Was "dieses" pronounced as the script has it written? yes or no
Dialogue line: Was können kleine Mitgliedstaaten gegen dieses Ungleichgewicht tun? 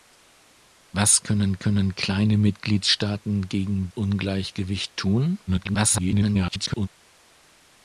no